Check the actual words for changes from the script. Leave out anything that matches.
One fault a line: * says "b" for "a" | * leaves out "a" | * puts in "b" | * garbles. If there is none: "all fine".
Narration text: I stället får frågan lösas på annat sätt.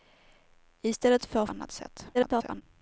* leaves out "frågan lösas på"
* garbles